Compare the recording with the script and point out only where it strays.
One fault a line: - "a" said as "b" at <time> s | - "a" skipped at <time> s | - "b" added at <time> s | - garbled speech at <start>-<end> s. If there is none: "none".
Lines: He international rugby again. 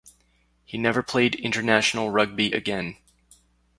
- "never played" added at 0.8 s